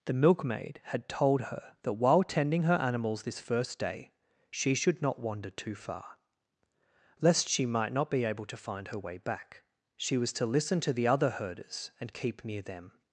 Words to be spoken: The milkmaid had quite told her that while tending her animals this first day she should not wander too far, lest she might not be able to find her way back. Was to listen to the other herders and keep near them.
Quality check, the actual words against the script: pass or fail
fail